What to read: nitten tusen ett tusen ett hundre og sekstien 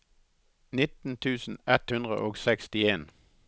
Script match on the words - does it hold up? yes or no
no